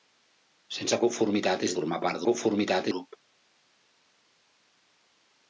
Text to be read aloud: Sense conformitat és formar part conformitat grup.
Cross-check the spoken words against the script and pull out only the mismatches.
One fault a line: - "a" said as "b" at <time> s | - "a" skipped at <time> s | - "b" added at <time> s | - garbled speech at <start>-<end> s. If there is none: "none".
none